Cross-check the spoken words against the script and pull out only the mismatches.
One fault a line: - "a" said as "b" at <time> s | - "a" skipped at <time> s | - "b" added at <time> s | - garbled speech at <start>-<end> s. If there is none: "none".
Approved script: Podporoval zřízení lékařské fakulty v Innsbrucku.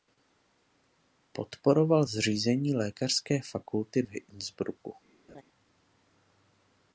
none